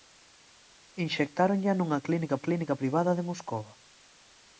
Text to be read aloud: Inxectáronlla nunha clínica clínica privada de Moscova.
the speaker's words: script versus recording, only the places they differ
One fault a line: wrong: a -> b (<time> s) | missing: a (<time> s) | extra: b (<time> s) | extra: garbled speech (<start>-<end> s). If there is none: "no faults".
no faults